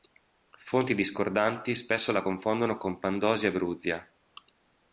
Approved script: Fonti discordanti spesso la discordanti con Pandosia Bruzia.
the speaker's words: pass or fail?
fail